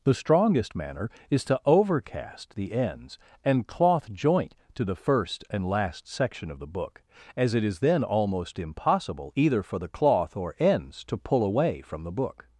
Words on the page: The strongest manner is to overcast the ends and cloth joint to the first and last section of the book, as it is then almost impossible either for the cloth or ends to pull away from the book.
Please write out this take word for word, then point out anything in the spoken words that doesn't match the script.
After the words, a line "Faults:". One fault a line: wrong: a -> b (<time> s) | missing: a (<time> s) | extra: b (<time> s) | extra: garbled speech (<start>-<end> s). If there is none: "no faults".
The strongest manner is to overcast the ends and cloth joint to the first and last section of the book, as it is then almost impossible either for the cloth or ends to pull away from the book.
Faults:
no faults